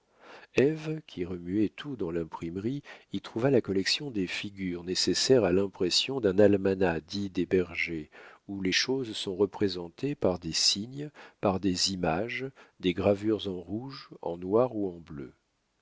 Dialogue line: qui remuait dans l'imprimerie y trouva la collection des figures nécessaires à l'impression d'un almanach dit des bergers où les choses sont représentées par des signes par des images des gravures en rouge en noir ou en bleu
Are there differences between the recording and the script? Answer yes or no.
yes